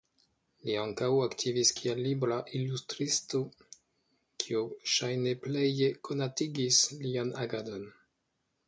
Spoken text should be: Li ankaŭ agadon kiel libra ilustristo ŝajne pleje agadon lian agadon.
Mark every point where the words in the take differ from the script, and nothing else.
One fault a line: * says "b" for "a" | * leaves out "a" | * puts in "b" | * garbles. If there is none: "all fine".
* says "aktivis" for "agadon"
* puts in "kio"
* says "konatigis" for "agadon"